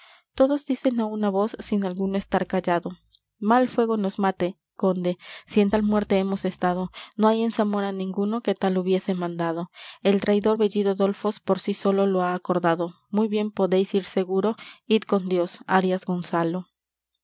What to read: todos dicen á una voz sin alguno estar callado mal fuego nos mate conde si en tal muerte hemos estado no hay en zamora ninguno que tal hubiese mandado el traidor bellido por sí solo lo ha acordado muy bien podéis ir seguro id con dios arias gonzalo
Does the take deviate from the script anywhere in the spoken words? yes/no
yes